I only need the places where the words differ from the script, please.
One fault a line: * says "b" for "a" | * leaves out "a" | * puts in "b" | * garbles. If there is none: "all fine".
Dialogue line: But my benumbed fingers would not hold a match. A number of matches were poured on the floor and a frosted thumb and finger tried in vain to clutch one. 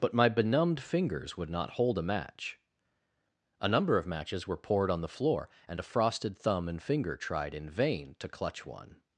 all fine